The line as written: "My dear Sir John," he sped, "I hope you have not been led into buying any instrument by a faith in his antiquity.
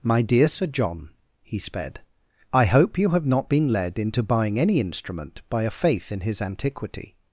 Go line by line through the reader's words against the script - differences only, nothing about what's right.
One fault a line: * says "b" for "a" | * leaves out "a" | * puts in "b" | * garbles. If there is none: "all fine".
all fine